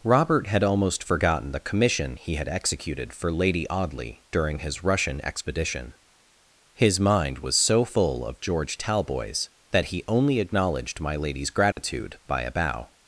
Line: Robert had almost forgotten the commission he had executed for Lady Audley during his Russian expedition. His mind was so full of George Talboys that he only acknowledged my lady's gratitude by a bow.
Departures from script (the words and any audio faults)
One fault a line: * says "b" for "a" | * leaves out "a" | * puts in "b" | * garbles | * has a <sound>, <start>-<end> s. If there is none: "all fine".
* has a dropout, 11.7-11.8 s